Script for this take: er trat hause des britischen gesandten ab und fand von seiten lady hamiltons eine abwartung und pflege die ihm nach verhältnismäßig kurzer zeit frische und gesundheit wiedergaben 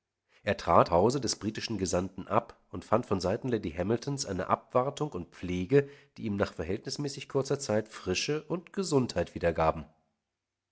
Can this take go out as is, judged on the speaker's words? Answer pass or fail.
pass